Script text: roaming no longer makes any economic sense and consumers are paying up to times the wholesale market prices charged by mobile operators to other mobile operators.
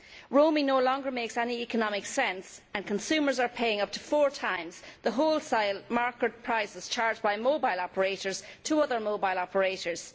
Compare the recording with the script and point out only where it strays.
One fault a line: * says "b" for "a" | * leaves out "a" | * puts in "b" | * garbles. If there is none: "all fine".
* puts in "four"